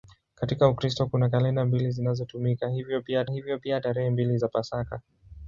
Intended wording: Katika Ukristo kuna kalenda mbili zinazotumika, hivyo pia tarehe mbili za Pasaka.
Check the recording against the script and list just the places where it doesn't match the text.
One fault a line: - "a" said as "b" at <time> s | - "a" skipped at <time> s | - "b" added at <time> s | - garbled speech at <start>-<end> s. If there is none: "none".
- "hivyo pia" added at 3.3 s